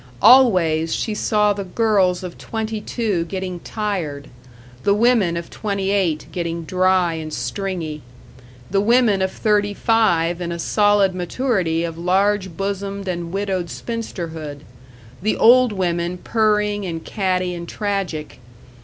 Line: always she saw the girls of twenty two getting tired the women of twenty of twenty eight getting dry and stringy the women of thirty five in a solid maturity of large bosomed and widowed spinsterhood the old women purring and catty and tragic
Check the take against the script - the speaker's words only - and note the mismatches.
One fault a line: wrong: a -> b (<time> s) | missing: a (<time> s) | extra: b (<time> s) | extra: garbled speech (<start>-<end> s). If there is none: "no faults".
missing: of twenty (5.9 s)